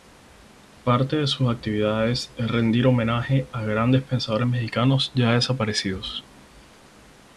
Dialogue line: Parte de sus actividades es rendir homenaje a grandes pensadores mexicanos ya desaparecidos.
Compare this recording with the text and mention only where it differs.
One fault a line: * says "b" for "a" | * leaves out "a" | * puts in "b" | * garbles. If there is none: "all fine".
all fine